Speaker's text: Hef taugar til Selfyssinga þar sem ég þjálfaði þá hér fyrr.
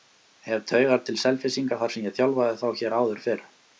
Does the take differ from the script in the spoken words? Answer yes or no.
yes